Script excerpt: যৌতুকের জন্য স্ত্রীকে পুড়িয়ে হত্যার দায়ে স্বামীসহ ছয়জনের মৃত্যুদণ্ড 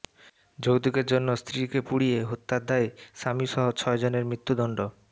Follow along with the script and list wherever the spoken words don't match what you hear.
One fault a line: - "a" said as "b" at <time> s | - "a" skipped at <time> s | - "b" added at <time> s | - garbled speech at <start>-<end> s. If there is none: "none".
none